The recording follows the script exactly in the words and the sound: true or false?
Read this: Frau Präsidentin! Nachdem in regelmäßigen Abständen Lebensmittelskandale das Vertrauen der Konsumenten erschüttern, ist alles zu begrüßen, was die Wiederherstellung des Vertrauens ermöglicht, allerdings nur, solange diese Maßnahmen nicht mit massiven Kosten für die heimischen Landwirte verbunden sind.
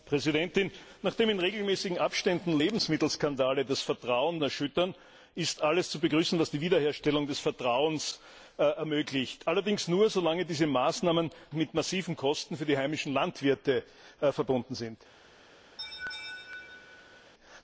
false